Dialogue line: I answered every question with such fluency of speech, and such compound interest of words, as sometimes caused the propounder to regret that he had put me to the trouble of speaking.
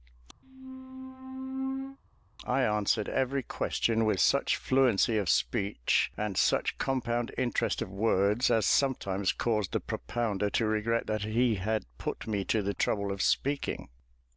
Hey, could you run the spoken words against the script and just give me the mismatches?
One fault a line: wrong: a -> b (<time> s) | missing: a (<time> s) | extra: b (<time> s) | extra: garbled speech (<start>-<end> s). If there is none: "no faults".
no faults